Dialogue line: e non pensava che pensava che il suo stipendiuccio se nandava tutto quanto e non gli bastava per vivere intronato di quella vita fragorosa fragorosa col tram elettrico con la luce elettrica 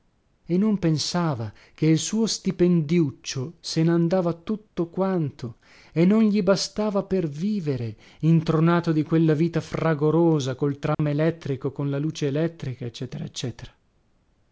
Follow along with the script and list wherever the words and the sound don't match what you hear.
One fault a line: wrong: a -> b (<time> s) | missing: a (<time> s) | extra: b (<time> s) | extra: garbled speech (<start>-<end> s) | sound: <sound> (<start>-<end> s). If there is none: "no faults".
missing: pensava che (1.9 s)
missing: fragorosa (10.5 s)
sound: dropout (10.9-11.0 s)